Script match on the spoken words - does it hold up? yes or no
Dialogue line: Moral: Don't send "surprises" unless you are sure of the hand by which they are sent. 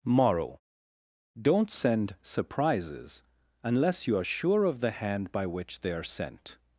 yes